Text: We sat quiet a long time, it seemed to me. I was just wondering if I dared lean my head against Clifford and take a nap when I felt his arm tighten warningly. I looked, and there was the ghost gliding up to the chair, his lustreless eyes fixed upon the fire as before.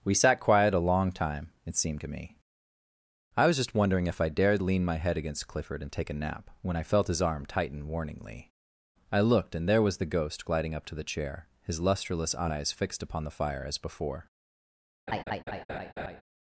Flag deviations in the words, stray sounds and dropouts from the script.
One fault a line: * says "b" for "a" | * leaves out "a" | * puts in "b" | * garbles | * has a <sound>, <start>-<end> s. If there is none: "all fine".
* has a laugh, 15.1-16.2 s